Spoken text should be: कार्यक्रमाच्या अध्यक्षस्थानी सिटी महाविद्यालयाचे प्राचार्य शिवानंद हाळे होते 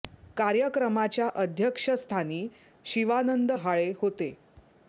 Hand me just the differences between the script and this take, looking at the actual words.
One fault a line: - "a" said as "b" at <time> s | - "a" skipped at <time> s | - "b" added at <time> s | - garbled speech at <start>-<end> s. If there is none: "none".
- "सिटी महाविद्यालयाचे प्राचार्य" skipped at 2.5 s